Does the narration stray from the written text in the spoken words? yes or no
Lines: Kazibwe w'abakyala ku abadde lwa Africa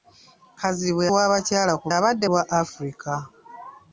no